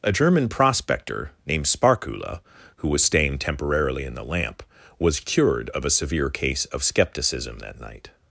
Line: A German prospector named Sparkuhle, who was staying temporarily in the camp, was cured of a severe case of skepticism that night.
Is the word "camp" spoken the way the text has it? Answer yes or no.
no